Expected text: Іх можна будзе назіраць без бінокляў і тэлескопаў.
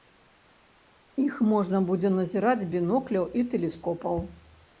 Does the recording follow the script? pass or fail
fail